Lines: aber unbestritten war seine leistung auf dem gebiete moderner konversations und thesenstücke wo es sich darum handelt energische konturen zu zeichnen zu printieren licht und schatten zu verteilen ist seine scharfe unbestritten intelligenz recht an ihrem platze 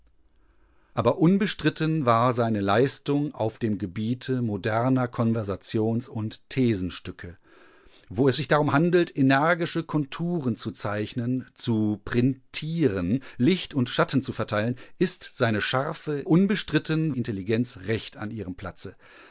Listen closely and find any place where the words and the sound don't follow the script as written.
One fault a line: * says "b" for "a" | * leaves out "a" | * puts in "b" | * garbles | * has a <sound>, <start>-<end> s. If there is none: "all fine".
all fine